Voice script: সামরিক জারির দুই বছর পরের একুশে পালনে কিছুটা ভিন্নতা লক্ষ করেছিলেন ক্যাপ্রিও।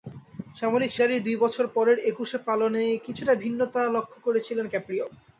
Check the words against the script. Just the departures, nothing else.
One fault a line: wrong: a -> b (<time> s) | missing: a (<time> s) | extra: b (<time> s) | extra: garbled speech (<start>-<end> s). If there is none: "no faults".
no faults